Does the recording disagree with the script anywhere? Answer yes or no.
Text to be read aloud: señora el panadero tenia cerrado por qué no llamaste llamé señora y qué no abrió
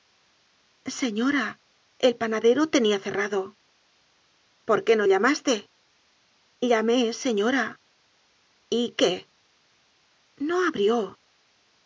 no